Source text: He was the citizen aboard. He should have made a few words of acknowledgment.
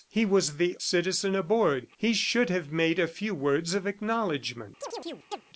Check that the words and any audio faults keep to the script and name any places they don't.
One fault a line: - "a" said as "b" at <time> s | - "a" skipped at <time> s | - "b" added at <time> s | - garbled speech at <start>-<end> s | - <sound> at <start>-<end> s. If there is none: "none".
- chirp at 4.8-5.4 s